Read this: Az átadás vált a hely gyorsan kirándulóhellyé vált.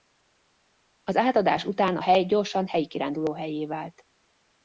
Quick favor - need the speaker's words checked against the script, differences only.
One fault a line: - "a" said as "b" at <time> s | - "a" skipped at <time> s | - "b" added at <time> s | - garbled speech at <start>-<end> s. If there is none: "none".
- "vált" said as "után" at 1.6 s
- "helyi" added at 2.7 s